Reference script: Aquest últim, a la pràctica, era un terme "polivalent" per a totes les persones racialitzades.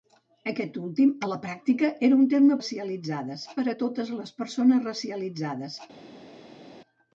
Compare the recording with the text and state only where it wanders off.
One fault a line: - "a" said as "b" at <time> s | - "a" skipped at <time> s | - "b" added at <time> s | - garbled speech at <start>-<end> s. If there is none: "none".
- "polivalent" said as "racialitzades" at 2.6 s